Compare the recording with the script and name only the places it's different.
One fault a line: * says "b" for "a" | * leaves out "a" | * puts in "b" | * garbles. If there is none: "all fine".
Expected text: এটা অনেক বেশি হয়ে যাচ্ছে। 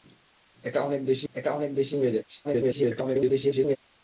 * puts in "এটা অনেক বেশি"
* garbles